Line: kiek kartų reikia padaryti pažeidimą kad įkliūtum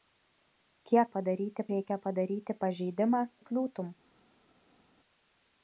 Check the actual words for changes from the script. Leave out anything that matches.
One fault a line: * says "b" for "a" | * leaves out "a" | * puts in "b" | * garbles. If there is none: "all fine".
* says "padaryti" for "kartų"
* leaves out "kad"